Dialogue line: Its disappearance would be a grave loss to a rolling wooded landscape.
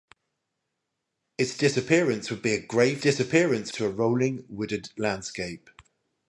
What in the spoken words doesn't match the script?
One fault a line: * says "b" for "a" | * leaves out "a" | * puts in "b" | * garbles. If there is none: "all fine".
* says "disappearance" for "loss"